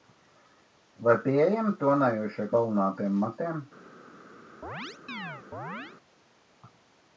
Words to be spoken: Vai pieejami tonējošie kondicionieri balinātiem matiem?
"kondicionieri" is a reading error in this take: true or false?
true